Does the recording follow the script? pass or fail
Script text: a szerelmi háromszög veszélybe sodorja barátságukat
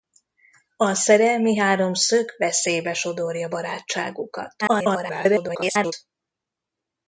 fail